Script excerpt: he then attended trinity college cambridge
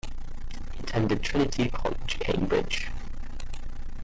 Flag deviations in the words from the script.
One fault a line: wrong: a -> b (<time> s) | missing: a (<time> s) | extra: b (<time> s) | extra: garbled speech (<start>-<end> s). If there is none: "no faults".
missing: then (0.8 s)